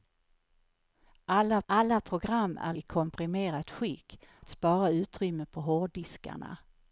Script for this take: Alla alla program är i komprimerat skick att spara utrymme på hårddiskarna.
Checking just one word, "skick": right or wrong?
right